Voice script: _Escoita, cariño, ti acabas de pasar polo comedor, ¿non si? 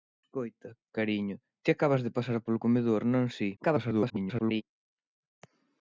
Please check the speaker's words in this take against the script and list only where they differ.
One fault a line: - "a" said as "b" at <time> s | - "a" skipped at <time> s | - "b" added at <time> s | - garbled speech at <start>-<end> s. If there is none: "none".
- garbled speech at 3.6-4.6 s